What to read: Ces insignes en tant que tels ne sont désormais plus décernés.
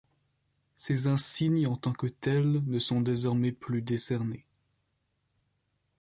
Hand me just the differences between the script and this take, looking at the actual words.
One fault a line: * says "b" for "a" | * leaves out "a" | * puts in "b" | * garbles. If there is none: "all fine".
all fine